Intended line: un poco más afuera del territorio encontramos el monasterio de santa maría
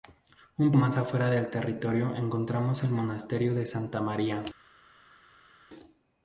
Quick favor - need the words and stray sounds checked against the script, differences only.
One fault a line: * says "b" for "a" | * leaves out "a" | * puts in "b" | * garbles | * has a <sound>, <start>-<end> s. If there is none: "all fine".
* leaves out "poco"